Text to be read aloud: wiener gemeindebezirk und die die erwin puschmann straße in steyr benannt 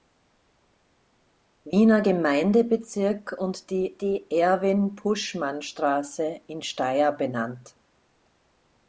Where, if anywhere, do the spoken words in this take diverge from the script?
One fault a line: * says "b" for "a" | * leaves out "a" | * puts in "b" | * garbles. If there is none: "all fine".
all fine